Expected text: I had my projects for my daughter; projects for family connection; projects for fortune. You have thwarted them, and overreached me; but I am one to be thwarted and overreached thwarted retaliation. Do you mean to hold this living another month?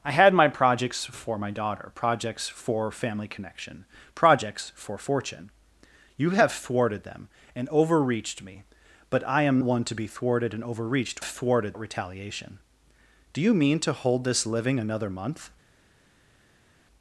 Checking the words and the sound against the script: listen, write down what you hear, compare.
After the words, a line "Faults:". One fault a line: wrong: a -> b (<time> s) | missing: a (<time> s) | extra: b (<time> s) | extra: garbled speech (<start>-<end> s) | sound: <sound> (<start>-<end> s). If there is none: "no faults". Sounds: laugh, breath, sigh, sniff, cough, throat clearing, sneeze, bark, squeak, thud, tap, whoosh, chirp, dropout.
I had my projects for my daughter; projects for family connection; projects for fortune. You have thwarted them, and overreached me; but I am one to be thwarted and overreached thwarted retaliation. Do you mean to hold this living another month?
Faults:
no faults